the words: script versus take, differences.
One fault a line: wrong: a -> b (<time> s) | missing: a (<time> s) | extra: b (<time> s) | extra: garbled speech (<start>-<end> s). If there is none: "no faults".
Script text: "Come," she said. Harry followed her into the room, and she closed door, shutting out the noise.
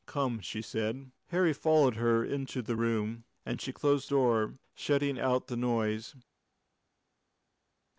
no faults